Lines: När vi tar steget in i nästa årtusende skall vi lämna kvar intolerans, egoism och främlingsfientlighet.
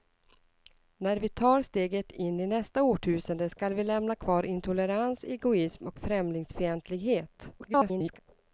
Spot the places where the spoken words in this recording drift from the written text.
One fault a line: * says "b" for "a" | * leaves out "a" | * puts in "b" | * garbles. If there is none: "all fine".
* garbles